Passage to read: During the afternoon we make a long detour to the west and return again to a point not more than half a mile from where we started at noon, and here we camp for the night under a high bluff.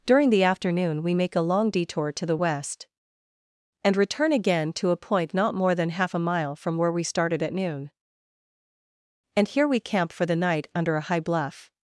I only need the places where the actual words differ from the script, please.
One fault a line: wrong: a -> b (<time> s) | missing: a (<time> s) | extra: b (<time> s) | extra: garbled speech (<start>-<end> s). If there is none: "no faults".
no faults